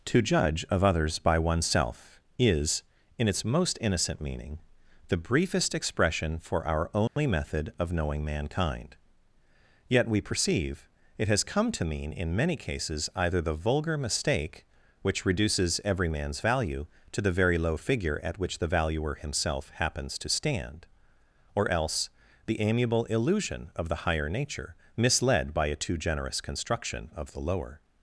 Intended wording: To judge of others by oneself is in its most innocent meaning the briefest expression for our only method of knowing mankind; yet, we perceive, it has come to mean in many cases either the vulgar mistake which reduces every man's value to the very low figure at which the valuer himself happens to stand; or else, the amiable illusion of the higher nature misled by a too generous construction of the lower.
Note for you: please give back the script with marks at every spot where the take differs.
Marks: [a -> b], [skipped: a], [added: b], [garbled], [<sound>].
To judge of others by oneself is in its most innocent meaning the briefest expression for our only [dropout] method of knowing mankind; yet, we perceive, it has come to mean in many cases either the vulgar mistake which reduces every man's value to the very low figure at which the valuer himself happens to stand; or else, the amiable illusion of the higher nature misled by a too generous construction of the lower.